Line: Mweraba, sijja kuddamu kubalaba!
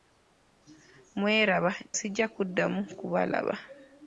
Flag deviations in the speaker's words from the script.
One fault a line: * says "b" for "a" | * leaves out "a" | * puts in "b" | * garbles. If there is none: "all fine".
all fine